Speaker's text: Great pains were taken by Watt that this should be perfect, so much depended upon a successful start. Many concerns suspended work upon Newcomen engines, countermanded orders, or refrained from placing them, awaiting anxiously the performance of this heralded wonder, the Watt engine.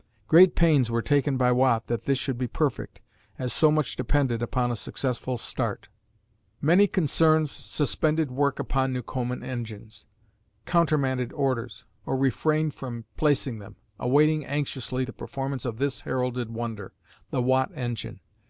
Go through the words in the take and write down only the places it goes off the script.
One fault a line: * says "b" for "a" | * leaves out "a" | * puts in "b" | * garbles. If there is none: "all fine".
* puts in "as"